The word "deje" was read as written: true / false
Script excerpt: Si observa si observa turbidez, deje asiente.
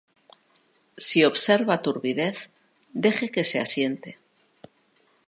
false